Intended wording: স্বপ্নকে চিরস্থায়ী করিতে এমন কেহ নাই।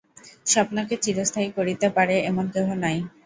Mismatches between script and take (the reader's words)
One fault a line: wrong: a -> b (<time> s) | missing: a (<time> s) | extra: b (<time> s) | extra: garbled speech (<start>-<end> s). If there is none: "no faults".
extra: পারে (1.9 s)